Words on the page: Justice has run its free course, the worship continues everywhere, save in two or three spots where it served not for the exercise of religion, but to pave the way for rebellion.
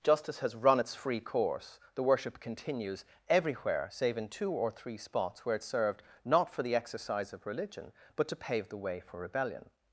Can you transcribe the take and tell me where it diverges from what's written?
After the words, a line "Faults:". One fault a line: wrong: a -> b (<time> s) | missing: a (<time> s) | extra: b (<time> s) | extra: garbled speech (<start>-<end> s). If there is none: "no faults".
Justice has run its free course, the worship continues everywhere, save in two or three spots where it served not for the exercise of religion, but to pave the way for rebellion.
Faults:
no faults